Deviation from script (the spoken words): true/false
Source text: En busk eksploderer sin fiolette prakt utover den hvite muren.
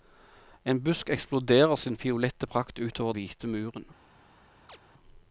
true